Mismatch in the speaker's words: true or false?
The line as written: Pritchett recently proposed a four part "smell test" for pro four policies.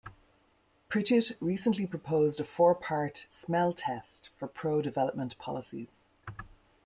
true